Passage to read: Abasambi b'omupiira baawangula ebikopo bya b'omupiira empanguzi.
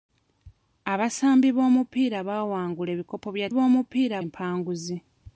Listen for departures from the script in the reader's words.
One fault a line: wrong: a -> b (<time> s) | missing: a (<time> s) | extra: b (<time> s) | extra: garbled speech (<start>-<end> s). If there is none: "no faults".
no faults